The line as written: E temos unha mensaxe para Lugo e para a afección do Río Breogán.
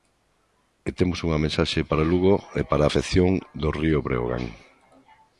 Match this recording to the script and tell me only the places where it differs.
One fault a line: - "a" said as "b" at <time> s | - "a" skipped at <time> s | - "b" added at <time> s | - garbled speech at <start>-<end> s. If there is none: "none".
none